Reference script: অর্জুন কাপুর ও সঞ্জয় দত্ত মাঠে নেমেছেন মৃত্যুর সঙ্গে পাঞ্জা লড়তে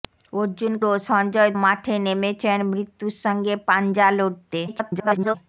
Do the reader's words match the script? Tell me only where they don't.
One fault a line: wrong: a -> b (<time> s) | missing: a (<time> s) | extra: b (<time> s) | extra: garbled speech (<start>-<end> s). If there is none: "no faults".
missing: কাপুর (0.7 s)
missing: দত্ত (1.5 s)
extra: garbled speech (4.7-5.4 s)